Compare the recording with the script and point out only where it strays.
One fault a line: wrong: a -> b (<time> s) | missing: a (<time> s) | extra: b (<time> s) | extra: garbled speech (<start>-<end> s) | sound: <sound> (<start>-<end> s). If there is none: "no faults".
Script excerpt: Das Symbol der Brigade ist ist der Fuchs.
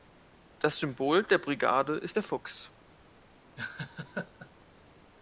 missing: ist (2.2 s)
sound: laugh (3.6-4.5 s)